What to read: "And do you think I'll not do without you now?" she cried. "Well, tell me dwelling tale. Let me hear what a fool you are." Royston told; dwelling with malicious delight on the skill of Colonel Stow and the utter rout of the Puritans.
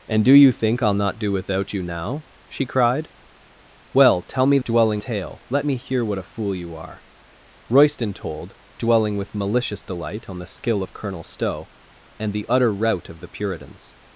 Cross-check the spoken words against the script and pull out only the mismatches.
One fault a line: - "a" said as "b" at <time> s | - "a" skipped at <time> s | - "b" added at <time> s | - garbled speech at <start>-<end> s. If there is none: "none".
none